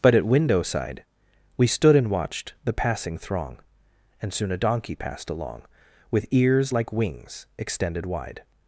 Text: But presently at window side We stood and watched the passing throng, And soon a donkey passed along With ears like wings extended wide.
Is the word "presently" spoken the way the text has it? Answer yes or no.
no